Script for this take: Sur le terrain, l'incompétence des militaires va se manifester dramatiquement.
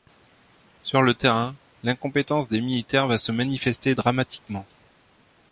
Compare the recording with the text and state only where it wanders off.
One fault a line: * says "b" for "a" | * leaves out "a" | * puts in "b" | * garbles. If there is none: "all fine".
all fine